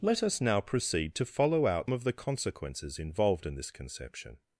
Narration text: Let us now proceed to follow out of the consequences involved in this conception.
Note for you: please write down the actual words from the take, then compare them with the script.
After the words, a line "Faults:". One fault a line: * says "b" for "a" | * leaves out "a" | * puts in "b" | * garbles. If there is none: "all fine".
Let us now proceed to follow out of the consequences involved in this conception.
Faults:
all fine